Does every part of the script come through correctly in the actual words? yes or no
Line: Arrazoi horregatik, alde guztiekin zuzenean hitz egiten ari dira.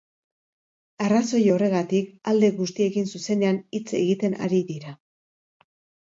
yes